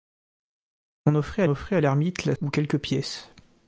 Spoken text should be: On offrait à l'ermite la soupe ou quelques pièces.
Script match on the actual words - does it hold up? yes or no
no